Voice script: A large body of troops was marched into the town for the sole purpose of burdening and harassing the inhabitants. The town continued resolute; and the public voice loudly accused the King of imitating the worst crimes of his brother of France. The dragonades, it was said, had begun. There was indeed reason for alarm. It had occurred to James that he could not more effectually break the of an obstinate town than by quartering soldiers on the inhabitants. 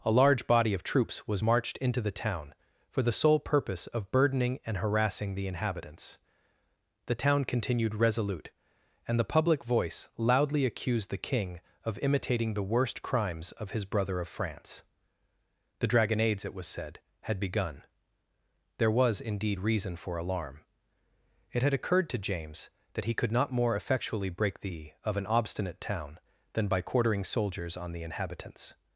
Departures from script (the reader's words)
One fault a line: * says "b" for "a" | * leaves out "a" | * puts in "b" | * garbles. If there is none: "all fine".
all fine